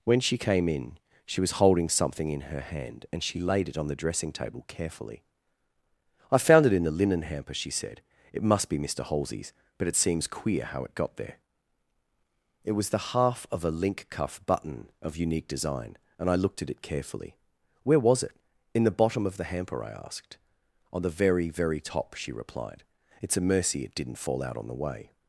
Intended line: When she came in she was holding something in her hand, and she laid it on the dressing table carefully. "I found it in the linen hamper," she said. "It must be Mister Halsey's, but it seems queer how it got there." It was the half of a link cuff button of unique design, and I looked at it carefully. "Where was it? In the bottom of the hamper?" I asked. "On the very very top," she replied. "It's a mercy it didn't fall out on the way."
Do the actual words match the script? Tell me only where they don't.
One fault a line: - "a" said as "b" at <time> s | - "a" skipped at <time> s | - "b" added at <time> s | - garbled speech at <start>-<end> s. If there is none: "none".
none